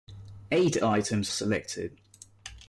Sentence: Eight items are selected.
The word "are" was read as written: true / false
false